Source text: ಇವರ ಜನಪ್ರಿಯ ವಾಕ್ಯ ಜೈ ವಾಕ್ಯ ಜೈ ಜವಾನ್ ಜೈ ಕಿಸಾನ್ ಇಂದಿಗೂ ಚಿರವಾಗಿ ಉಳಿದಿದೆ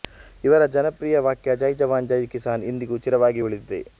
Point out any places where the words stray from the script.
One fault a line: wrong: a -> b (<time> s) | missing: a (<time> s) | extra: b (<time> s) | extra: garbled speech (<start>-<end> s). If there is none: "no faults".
missing: ವಾಕ್ಯ ಜೈ (1.7 s)